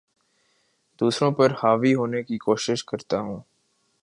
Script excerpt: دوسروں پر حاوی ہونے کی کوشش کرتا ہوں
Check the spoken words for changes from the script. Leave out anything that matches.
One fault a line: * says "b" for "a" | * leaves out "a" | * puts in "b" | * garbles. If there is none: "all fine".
all fine